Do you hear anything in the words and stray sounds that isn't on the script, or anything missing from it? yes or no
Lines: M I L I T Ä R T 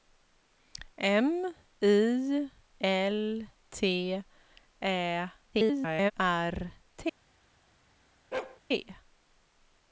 yes